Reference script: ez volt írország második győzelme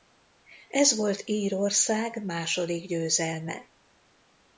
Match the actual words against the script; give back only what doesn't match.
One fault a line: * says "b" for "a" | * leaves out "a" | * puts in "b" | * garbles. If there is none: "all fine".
all fine